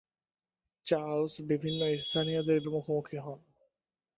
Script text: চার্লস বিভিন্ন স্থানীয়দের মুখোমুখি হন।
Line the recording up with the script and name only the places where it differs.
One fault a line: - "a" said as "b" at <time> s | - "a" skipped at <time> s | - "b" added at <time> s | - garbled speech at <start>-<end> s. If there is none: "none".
none